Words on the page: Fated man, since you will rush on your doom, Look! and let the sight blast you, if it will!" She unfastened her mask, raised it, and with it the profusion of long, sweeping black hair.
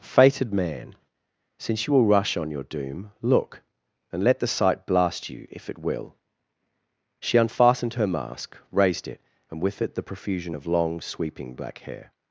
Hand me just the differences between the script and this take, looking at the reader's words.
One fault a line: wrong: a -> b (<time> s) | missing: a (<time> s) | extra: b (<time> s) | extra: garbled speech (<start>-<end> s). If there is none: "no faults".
no faults